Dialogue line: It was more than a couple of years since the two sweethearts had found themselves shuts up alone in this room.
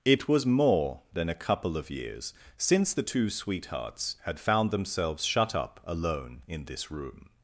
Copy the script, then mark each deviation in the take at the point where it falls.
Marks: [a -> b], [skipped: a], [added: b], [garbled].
It was more than a couple of years since the two sweethearts had found themselves [shuts -> shut] up alone in this room.